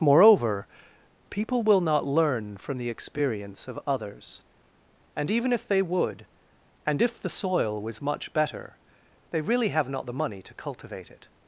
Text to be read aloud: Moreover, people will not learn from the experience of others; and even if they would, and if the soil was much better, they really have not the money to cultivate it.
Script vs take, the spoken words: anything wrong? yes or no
no